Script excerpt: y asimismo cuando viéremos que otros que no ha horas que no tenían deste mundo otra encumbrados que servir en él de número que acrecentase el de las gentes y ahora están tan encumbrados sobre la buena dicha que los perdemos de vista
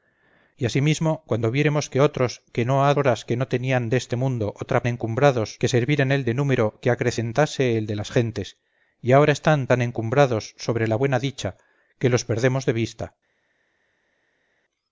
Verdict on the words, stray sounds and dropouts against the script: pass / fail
pass